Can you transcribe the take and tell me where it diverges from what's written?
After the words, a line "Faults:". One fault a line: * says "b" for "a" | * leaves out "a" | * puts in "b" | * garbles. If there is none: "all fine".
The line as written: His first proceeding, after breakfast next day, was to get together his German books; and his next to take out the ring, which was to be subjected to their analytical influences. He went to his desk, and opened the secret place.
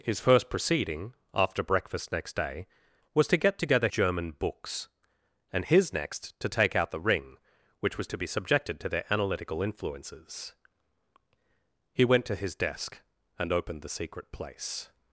His first proceeding, after breakfast next day, was to get together German books; and his next to take out the ring, which was to be subjected to their analytical influences. He went to his desk, and opened the secret place.
Faults:
* leaves out "his"